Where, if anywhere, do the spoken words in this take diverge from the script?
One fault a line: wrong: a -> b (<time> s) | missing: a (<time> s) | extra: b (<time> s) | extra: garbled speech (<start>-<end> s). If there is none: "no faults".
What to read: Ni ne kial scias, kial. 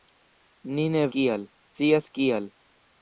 no faults